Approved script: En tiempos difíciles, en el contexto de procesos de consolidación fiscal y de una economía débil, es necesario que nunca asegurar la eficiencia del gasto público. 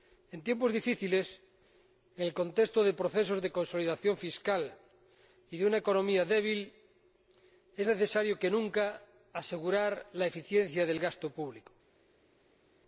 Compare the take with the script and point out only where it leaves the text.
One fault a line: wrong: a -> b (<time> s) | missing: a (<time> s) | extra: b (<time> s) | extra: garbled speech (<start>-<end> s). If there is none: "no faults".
no faults